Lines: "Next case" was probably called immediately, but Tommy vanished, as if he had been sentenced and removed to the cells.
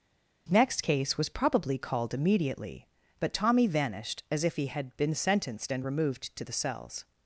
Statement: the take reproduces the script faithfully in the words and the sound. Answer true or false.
true